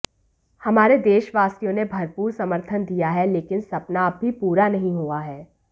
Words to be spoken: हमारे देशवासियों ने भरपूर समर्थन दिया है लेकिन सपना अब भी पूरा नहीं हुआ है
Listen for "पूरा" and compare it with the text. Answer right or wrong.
right